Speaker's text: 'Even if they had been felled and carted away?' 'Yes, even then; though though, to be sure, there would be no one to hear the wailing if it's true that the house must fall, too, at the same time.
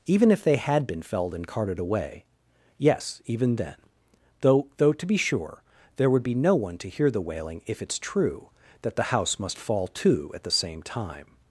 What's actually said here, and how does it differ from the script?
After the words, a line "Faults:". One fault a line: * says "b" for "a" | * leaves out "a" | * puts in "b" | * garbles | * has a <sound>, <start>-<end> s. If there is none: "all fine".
'Even if they had been felled and carted away?' 'Yes, even then; though though, to be sure, there would be no one to hear the wailing if it's true that the house must fall, too, at the same time.
Faults:
all fine